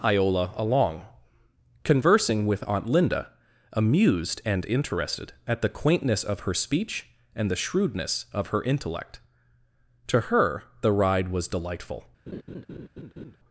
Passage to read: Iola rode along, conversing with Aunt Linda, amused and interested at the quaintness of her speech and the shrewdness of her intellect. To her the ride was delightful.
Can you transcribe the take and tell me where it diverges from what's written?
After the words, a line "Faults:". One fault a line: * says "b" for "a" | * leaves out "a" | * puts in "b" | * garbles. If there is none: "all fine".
Iola along, conversing with Aunt Linda, amused and interested at the quaintness of her speech and the shrewdness of her intellect. To her the ride was delightful.
Faults:
* leaves out "rode"